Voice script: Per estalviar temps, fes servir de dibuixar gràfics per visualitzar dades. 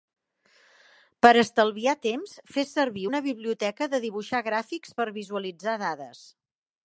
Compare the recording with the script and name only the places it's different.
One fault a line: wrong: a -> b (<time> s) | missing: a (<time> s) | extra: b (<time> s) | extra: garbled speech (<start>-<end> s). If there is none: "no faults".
extra: una biblioteca (3.1 s)